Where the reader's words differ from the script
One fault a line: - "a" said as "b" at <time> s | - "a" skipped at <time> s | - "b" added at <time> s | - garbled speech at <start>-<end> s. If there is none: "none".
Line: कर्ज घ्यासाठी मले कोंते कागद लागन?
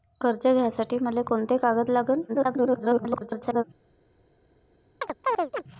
- garbled speech at 2.3-3.6 s